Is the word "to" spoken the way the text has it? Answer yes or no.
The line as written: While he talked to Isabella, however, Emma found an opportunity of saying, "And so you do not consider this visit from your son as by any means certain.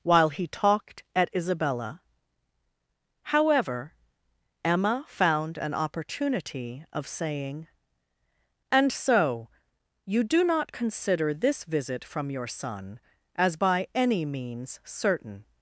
no